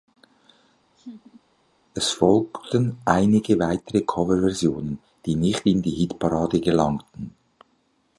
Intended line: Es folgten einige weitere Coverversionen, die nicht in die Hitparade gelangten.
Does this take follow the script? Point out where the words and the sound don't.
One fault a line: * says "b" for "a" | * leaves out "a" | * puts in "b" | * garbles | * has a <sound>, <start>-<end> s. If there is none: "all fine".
* has a laugh, 1.0-1.4 s